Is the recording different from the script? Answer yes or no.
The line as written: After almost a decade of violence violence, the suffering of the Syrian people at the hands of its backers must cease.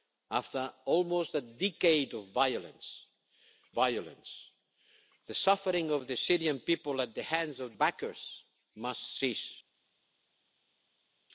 no